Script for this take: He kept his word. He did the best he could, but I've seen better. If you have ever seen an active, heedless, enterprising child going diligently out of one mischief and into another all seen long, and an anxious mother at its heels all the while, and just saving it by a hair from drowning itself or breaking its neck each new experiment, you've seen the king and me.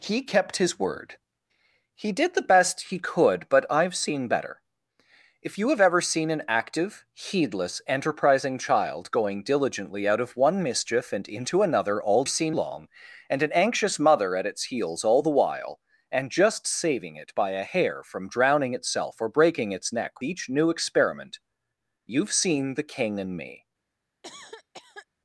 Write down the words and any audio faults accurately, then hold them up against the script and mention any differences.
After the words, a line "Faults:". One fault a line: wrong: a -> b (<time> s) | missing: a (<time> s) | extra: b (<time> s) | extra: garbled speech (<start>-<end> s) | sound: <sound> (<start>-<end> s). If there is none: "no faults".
He kept his word. He did the best he could, but I've seen better. If you have ever seen an active, heedless, enterprising child going diligently out of one mischief and into another all seen long, and an anxious mother at its heels all the while, and just saving it by a hair from drowning itself or breaking its neck each new experiment, you've seen the king and me.
Faults:
sound: cough (24.2-25.1 s)